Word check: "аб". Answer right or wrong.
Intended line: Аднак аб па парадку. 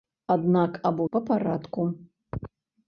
right